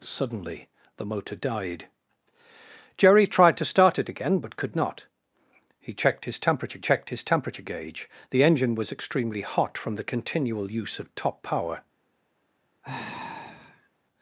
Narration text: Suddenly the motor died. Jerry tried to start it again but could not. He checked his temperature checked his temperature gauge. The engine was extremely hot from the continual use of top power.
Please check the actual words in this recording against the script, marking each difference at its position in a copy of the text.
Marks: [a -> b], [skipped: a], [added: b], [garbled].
Suddenly the motor died. Jerry tried to start it again but could not. He checked his temperature checked his temperature gauge. The engine was extremely hot from the continual use of top power.